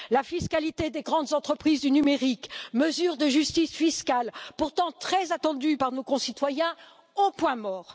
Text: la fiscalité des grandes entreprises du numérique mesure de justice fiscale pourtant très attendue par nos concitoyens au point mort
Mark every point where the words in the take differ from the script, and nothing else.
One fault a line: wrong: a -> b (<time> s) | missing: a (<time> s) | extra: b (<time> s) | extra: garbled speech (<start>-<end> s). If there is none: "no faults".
no faults